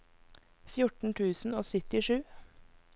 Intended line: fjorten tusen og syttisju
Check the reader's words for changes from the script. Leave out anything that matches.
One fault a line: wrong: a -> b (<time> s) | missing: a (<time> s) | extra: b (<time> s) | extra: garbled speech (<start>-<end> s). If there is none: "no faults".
no faults